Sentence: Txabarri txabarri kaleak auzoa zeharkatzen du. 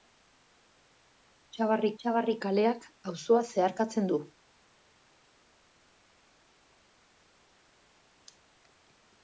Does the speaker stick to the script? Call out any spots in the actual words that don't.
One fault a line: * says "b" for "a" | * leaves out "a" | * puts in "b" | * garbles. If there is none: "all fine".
all fine